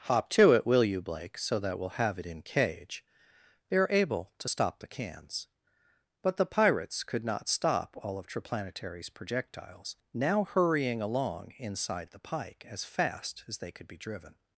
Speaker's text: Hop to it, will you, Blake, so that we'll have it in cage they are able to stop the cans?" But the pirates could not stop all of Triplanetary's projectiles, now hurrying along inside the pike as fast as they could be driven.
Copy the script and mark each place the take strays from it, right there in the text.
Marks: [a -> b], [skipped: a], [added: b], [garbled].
Hop to it, will you, Blake, so that we'll have it in cage they are able to stop the cans?" But the pirates could not stop all of Triplanetary's projectiles, now hurrying along inside the pike as fast as they could be driven.